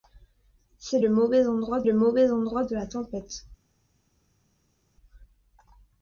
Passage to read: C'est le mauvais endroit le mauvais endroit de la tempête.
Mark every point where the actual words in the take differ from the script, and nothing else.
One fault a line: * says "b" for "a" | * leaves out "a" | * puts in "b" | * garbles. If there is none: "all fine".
all fine